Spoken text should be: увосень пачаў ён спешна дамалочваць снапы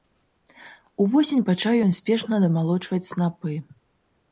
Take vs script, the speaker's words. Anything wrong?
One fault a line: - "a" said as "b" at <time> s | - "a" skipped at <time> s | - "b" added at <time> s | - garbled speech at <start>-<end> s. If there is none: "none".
none